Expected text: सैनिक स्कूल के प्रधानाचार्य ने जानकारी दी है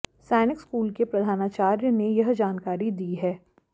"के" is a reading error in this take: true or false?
false